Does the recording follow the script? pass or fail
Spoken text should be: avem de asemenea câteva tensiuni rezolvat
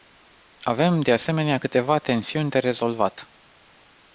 fail